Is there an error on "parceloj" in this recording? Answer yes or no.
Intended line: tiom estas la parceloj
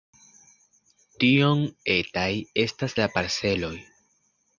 no